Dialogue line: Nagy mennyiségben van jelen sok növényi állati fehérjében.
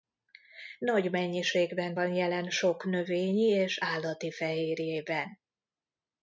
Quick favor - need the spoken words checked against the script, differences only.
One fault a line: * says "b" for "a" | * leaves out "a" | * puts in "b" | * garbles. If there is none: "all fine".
* puts in "és"